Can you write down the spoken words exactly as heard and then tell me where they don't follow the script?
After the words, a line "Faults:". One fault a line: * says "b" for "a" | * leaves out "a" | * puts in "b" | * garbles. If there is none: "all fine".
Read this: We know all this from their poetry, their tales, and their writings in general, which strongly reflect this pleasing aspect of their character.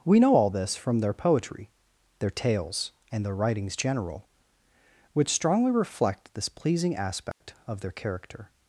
We know all this from their poetry, their tales, and their writings general, which strongly reflect this pleasing aspect of their character.
Faults:
* leaves out "in"